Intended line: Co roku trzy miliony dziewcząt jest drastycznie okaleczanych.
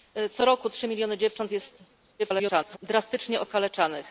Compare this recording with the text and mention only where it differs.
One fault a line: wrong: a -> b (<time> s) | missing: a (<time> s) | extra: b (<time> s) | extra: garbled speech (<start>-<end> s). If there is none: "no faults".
extra: garbled speech (2.2-2.8 s)